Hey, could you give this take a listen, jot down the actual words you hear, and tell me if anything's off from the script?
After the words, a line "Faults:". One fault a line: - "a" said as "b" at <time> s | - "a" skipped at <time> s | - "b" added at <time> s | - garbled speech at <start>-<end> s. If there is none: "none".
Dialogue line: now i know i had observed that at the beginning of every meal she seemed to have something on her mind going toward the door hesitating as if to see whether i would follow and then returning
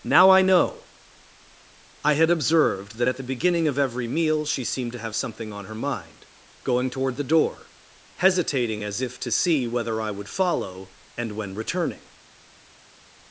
now i know i had observed that at the beginning of every meal she seemed to have something on her mind going toward the door hesitating as if to see whether i would follow and when returning
Faults:
- "then" said as "when" at 11.3 s